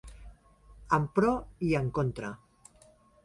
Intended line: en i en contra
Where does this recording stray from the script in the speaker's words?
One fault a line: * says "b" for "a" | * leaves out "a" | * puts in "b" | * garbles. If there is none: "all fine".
* puts in "pro"